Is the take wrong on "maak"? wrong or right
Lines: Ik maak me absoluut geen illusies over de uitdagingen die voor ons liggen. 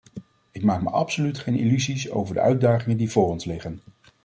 right